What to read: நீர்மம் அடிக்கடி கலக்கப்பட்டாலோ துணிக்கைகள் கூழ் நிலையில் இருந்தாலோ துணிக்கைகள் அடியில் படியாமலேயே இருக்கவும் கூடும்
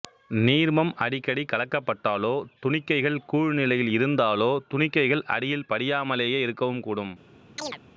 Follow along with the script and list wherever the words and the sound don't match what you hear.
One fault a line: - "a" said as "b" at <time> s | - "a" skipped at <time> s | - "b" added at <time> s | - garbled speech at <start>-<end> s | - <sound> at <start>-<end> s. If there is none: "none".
- chirp at 7.6-7.8 s